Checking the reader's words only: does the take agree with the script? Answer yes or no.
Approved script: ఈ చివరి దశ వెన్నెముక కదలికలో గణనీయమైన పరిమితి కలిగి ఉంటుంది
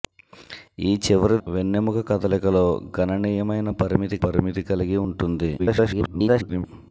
no